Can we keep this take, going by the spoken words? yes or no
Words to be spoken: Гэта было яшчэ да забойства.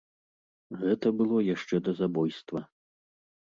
yes